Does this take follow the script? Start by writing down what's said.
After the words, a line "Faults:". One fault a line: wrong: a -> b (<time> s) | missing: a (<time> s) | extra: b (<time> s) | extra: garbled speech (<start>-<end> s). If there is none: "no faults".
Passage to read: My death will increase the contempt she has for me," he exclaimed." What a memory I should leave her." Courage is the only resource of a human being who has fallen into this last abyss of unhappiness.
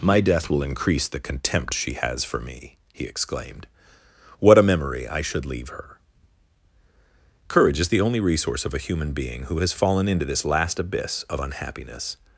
My death will increase the contempt she has for me," he exclaimed." What a memory I should leave her." Courage is the only resource of a human being who has fallen into this last abyss of unhappiness.
Faults:
no faults